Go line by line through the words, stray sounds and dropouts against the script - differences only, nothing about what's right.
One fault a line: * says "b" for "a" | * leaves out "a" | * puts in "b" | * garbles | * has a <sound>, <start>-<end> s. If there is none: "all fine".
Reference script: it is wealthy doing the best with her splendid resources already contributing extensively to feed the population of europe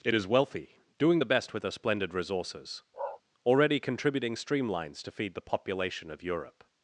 * has a bark, 2.9-3.2 s
* says "streamlines" for "extensively"